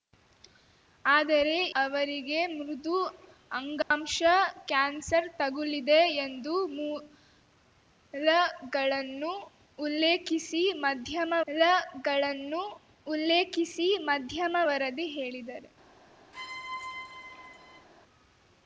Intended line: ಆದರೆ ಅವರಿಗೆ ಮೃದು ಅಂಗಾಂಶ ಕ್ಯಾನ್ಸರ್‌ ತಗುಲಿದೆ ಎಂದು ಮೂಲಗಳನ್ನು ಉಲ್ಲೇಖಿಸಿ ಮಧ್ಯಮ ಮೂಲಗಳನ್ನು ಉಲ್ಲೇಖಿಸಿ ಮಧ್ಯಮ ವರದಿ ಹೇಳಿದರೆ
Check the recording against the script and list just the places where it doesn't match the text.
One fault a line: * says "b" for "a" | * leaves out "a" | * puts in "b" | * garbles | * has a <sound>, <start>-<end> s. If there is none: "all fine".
* has a dropout, 3.8-3.9 s
* has a squeak, 16.3-17.9 s